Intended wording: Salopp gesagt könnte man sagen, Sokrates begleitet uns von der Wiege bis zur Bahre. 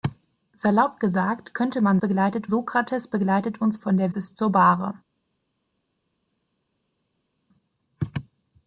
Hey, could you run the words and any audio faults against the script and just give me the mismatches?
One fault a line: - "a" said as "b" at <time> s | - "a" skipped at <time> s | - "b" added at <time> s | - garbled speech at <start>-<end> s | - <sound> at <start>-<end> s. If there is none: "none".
- "sagen" said as "begleitet" at 2.0 s
- "Wiege" skipped at 4.1 s